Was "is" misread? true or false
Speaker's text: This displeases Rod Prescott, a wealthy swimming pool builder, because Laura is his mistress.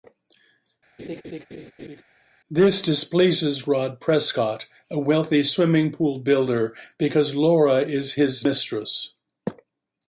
false